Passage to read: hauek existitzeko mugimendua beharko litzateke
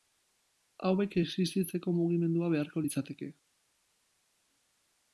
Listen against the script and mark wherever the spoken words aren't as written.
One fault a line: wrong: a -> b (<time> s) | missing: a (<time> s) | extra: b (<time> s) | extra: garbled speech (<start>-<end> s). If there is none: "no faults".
no faults